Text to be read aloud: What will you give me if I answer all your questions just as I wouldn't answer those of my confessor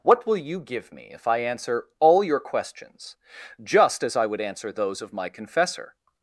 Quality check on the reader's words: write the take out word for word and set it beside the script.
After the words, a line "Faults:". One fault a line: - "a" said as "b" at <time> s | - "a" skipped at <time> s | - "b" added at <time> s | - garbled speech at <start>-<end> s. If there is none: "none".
What will you give me if I answer all your questions just as I would answer those of my confessor
Faults:
- "wouldn't" said as "would" at 4.3 s